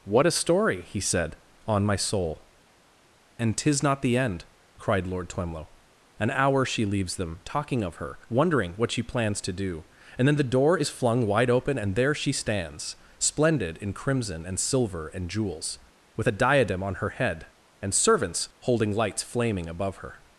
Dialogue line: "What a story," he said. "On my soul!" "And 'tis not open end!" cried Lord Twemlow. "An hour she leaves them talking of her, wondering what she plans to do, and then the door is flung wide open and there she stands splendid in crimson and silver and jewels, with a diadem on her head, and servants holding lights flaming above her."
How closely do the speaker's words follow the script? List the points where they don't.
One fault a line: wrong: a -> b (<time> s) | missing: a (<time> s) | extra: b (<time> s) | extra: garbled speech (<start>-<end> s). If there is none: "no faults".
wrong: open -> the (4.0 s)